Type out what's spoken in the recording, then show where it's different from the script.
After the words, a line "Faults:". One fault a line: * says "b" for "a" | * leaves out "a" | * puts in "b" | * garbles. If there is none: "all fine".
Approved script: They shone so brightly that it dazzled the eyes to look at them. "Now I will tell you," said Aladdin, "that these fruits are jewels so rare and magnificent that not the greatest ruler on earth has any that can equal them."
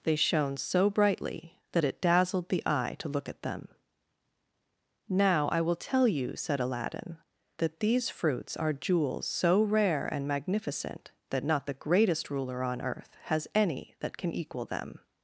They shone so brightly that it dazzled the eye to look at them. "Now I will tell you," said Aladdin, "that these fruits are jewels so rare and magnificent that not the greatest ruler on earth has any that can equal them."
Faults:
* says "eye" for "eyes"